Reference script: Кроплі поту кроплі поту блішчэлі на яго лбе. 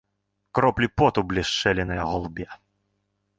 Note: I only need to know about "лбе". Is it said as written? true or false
true